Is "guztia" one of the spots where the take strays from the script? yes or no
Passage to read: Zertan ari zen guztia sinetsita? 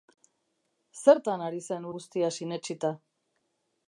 no